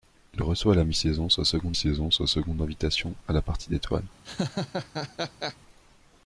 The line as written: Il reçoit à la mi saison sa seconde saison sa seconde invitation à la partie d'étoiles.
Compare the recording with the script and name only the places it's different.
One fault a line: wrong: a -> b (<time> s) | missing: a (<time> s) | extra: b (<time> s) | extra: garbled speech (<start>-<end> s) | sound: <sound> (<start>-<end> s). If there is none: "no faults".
sound: laugh (4.2-5.6 s)